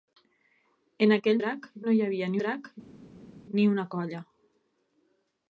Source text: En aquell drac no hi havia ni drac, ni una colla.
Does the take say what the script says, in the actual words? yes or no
yes